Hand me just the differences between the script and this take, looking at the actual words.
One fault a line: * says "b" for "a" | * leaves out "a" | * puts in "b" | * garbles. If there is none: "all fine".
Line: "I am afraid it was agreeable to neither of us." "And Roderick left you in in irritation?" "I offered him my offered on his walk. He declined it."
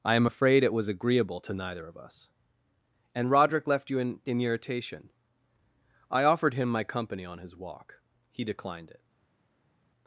* says "company" for "offered"